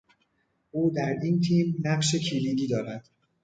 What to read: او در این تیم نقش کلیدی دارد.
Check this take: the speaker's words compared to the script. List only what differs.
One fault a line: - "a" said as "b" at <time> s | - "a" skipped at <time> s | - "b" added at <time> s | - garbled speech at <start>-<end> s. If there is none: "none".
none